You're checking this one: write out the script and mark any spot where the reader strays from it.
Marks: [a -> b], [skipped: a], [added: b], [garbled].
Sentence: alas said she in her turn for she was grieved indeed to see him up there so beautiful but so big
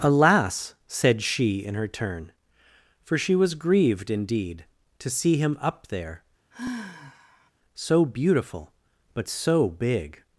alas said she in her turn for she was grieved indeed to see him up there so beautiful but so big